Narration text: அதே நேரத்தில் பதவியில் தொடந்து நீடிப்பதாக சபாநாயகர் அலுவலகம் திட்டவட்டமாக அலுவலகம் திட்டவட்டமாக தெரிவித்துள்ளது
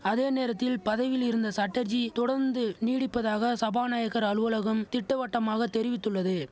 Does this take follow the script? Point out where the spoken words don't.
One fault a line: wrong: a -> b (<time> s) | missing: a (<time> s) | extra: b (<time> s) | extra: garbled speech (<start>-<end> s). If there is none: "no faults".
extra: இருந்த சட்டர்ஜி (1.2 s)
missing: அலுவலகம் திட்டவட்டமாக (5.7 s)